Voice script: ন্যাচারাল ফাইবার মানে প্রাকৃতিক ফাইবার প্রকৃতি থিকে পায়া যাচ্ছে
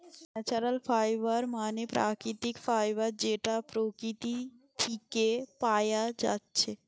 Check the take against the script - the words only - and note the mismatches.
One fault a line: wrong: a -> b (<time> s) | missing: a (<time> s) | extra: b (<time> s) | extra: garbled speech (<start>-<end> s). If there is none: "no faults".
extra: যেটা (3.2 s)